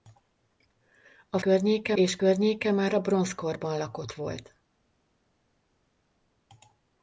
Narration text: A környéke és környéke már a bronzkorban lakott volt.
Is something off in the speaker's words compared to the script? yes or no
no